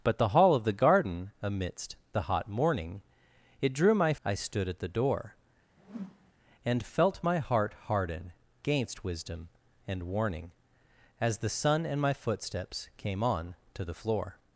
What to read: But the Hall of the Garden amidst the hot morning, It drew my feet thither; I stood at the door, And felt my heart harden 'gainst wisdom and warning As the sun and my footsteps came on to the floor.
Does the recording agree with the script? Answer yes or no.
no